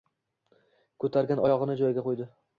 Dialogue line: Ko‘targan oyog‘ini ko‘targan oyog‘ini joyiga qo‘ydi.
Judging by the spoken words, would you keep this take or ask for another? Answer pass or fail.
fail